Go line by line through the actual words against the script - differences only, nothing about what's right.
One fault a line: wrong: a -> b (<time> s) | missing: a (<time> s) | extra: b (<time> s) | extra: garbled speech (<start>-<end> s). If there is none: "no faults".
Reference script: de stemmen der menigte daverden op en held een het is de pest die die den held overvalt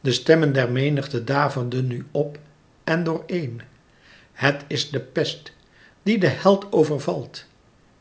extra: nu (1.9 s)
wrong: held -> door (3.0 s)
missing: die (6.2 s)